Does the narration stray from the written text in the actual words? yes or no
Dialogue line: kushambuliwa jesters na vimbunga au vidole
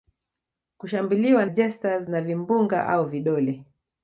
no